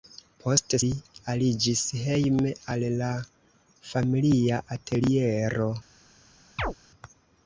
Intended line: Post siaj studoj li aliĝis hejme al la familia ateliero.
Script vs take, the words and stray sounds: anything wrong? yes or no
yes